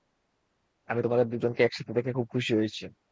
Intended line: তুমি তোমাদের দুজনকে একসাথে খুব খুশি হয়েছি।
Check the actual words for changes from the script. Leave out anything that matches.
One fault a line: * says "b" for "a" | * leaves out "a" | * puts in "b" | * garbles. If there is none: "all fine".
* says "আমি" for "তুমি"
* puts in "দেখে"